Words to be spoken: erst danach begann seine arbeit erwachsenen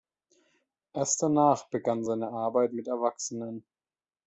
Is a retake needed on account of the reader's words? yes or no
yes